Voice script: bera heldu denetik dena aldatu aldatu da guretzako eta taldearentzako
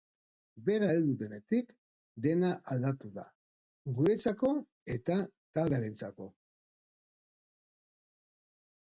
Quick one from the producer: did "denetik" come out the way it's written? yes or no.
yes